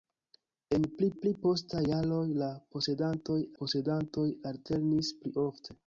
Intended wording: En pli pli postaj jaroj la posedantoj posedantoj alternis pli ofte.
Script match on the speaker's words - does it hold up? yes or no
yes